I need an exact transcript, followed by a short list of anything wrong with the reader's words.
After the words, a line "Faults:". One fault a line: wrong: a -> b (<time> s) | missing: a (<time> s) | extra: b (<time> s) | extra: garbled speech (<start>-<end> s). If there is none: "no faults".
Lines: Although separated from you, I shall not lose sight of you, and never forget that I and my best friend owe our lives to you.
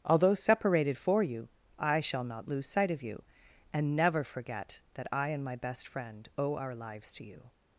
Although separated for you, I shall not lose sight of you, and never forget that I and my best friend owe our lives to you.
Faults:
wrong: from -> for (1.0 s)